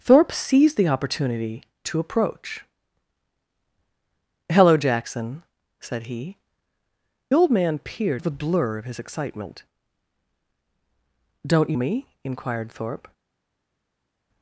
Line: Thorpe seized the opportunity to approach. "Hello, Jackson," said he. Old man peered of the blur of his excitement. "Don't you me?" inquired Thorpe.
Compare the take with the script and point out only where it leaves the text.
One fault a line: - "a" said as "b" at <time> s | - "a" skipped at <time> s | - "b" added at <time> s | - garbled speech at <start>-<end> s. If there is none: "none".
none